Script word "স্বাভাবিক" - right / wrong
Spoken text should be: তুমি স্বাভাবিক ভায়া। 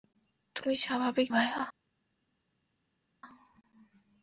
right